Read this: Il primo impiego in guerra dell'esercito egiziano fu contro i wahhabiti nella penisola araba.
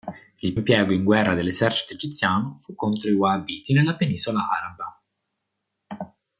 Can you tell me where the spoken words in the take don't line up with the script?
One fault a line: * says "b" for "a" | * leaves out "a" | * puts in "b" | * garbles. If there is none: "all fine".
* leaves out "primo"